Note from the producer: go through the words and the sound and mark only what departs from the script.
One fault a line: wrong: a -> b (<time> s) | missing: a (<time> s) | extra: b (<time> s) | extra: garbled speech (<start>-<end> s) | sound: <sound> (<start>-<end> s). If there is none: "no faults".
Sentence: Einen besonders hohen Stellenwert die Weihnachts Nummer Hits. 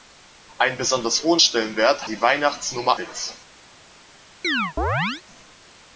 sound: chirp (4.4-5.2 s)